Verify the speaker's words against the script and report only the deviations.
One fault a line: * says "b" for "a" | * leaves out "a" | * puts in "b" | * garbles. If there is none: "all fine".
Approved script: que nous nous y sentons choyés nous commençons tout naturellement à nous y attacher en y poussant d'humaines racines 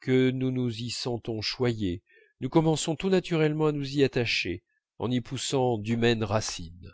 all fine